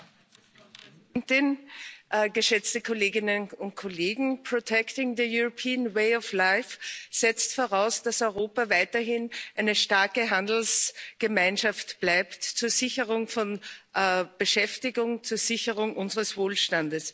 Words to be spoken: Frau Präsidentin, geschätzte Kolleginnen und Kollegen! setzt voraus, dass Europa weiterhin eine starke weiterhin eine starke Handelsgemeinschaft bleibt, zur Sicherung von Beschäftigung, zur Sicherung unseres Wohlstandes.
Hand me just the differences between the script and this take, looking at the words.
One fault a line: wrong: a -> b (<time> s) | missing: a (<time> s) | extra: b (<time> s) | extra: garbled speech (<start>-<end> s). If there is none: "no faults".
missing: weiterhin eine starke (10.3 s)